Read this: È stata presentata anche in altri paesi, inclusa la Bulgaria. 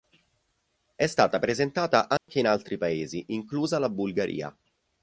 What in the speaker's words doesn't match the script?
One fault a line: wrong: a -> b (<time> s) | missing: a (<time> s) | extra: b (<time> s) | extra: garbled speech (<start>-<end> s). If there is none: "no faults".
no faults